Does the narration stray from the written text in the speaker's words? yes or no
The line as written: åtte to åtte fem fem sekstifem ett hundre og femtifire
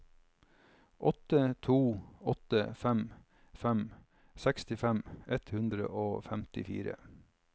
no